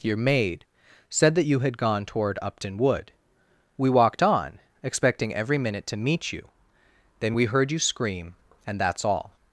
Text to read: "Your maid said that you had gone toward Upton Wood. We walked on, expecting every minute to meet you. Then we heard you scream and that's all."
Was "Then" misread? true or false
false